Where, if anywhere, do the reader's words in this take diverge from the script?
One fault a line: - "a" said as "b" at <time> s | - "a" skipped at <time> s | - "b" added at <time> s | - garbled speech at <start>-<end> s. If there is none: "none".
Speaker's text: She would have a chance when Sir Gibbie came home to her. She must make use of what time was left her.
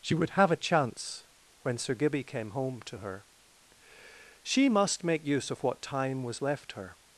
none